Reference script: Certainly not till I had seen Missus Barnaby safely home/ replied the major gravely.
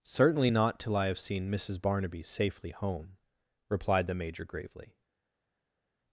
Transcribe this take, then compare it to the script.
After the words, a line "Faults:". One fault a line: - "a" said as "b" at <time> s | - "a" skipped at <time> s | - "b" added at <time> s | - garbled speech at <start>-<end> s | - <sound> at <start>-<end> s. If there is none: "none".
Certainly not till I have seen Missus Barnaby safely home/ replied the major gravely.
Faults:
- "had" said as "have" at 1.1 s